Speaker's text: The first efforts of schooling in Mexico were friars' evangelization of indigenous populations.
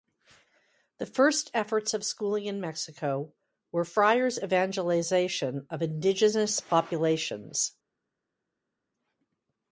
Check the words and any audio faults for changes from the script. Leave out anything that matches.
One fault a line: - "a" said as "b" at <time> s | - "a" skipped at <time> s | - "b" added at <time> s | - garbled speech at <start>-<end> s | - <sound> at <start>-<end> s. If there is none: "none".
none